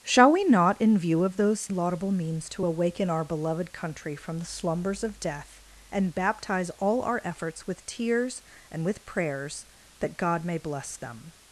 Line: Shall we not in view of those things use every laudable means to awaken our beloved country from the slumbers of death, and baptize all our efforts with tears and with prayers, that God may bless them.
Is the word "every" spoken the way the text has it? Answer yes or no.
no